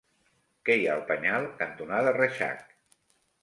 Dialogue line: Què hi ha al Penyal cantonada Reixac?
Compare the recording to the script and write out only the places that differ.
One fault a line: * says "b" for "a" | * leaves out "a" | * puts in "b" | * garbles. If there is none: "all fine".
all fine